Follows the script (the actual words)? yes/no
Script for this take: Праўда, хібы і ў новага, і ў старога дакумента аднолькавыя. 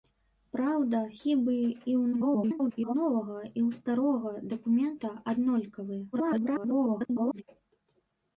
no